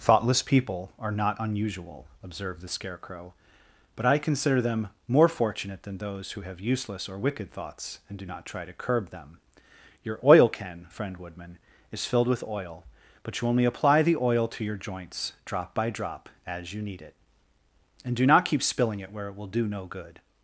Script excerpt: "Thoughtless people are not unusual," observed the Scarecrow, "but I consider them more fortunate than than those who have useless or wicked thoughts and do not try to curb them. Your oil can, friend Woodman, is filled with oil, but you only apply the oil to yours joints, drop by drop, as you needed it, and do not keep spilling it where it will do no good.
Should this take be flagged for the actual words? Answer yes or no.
yes